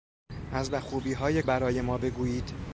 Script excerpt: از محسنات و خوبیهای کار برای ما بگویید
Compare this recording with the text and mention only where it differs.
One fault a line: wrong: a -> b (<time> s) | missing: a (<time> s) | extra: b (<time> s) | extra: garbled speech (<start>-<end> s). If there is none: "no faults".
missing: محسنات (0.7 s)
missing: کار (1.4 s)